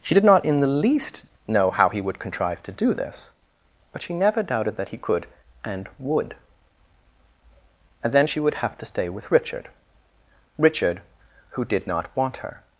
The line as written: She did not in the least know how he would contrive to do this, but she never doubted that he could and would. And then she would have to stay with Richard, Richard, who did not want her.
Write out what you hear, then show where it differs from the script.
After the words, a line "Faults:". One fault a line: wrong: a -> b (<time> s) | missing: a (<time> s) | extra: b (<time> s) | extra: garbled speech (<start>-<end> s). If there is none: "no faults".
She did not in the least know how he would contrive to do this, but she never doubted that he could and would. And then she would have to stay with Richard, Richard, who did not want her.
Faults:
no faults